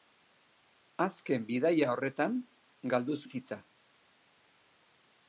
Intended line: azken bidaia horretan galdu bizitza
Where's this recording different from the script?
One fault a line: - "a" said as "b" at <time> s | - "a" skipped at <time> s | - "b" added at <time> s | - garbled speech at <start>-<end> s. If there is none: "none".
none